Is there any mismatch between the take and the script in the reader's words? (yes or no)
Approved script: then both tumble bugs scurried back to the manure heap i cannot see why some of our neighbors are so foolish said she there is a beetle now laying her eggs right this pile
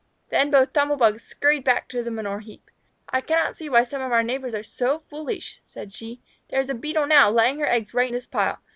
no